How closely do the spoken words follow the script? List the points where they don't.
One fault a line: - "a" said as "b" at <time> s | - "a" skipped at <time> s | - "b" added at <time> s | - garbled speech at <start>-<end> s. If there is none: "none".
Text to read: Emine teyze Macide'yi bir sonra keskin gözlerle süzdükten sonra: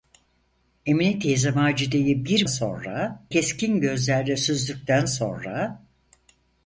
none